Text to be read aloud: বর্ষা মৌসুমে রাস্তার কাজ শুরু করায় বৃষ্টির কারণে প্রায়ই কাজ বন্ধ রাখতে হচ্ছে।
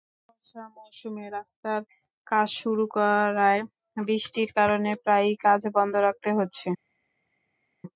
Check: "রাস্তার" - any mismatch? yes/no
no